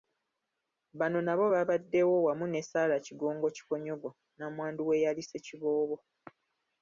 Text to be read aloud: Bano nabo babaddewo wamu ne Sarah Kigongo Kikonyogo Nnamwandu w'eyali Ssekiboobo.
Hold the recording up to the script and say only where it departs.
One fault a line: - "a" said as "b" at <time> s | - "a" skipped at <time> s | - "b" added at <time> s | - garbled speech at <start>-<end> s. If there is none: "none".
none